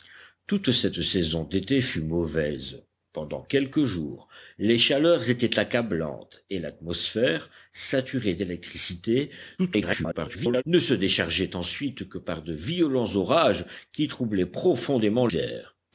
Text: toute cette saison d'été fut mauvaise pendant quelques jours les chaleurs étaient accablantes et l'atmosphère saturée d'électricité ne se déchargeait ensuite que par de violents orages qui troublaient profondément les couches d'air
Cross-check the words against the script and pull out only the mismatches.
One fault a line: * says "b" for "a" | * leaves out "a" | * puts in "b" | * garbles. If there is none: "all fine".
* garbles
* leaves out "les couches"